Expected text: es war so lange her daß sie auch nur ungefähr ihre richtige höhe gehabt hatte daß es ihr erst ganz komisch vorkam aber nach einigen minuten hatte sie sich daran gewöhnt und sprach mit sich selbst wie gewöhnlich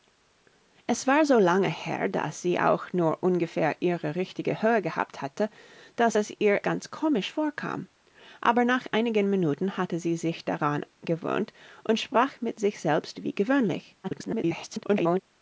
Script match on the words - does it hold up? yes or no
no